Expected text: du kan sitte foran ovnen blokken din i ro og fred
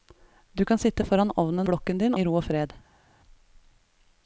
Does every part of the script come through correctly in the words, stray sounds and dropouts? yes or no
yes